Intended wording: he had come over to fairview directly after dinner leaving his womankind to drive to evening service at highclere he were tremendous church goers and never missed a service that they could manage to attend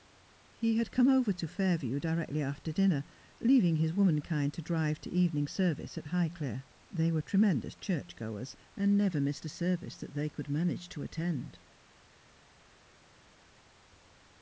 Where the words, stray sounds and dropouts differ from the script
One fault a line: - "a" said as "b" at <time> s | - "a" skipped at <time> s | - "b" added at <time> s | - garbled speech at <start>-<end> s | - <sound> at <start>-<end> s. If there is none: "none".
- "he" said as "they" at 6.9 s